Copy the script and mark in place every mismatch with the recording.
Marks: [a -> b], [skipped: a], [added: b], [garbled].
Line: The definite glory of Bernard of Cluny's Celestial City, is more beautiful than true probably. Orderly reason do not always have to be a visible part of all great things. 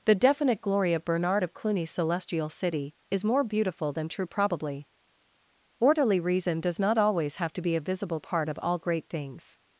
The definite glory of Bernard of Cluny's Celestial City, is more beautiful than true probably. Orderly reason [do -> does] not always have to be a visible part of all great things.